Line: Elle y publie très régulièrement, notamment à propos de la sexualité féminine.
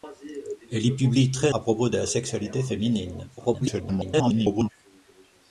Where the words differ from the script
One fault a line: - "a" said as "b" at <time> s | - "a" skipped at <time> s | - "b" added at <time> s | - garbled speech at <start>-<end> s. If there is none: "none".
- "régulièrement notamment" skipped at 1.5 s
- garbled speech at 3.4-4.7 s